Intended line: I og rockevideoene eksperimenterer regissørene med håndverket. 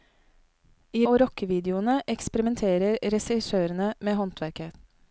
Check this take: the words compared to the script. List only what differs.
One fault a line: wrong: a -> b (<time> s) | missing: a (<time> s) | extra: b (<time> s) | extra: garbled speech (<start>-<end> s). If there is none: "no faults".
no faults